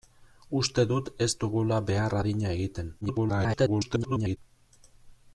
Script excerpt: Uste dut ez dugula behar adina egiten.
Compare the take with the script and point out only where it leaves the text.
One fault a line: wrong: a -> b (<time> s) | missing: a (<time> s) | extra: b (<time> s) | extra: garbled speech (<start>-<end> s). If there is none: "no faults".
extra: garbled speech (3.0-4.4 s)